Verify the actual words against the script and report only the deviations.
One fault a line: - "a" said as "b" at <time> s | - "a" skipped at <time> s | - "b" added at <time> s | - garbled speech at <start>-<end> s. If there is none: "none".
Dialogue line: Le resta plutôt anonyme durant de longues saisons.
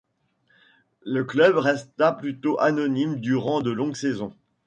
- "club" added at 1.2 s